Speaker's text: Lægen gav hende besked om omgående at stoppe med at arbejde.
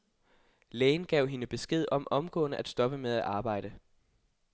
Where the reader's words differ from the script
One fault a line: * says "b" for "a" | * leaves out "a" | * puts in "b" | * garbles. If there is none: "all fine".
all fine